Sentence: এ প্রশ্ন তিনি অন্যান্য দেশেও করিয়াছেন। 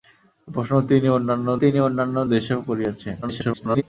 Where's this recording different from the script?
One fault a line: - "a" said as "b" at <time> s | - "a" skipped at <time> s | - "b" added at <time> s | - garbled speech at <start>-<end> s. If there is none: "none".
- "তিনি অন্যান্য" added at 1.6 s
- garbled speech at 3.2-3.8 s